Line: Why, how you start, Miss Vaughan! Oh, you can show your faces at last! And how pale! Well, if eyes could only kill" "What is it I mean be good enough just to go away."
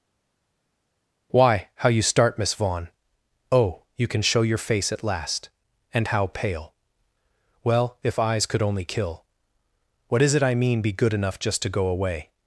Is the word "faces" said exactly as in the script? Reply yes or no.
no